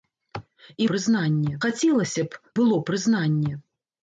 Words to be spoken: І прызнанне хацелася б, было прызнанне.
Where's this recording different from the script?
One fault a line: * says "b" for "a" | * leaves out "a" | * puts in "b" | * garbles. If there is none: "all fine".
all fine